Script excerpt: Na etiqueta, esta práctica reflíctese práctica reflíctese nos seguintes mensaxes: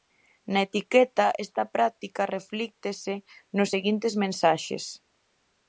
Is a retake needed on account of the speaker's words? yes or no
yes